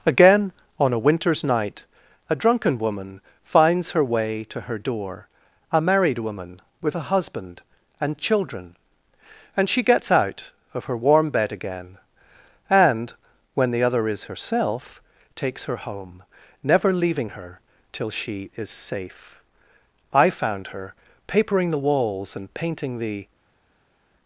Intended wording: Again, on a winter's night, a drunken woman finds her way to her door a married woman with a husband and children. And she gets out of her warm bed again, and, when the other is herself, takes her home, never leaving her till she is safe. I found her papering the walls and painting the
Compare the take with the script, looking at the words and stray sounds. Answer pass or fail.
pass